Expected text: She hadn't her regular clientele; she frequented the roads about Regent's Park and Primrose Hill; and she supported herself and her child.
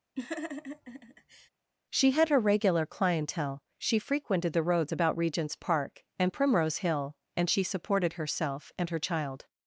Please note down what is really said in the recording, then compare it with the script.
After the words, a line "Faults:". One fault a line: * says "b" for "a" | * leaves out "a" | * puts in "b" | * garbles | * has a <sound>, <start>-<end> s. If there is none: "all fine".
She had her regular clientele; she frequented the roads about Regent's Park and Primrose Hill; and she supported herself and her child.
Faults:
* has a laugh, 0.2-1.5 s
* says "had" for "hadn't"